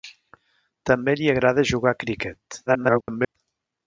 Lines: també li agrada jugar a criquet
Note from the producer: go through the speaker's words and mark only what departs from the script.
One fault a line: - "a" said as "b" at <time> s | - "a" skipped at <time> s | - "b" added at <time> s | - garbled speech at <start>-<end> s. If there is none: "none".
- garbled speech at 2.7-3.4 s